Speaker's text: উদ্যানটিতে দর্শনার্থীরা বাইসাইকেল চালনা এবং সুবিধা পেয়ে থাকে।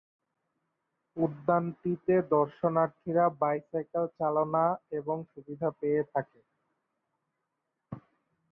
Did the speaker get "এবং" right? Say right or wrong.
right